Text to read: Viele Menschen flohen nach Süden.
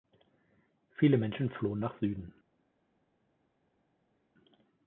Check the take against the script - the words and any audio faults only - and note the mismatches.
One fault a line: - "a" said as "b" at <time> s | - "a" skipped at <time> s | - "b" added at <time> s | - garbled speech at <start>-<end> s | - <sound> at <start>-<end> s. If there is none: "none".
none